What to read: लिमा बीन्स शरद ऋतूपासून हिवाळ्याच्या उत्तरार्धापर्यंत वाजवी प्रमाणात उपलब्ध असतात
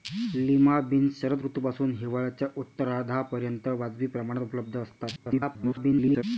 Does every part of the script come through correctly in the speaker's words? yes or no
no